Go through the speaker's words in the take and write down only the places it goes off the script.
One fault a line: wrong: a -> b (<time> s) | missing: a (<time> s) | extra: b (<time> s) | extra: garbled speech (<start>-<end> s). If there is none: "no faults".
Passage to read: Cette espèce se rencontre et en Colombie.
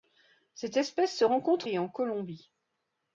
no faults